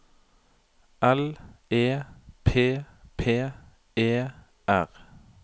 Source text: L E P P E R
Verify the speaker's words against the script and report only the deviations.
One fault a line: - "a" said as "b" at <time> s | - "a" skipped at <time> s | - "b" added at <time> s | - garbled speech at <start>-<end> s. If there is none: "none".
none